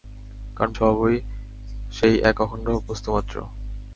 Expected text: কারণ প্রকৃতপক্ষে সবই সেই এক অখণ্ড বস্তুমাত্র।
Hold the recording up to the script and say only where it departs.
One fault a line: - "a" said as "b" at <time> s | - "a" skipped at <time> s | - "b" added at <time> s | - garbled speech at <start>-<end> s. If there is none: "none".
- "প্রকৃতপক্ষে" skipped at 0.7 s